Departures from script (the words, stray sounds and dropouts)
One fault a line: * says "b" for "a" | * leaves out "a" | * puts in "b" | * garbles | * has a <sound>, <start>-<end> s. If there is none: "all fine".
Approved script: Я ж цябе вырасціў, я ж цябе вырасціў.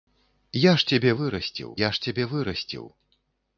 all fine